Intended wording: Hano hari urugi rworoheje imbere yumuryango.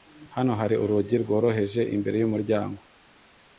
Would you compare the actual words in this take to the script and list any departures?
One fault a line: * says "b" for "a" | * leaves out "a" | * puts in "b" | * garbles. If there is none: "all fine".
all fine